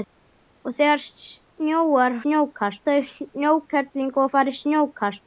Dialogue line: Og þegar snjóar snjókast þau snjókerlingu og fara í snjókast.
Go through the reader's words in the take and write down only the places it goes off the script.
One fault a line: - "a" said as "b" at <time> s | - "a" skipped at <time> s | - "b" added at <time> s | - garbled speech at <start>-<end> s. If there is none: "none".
none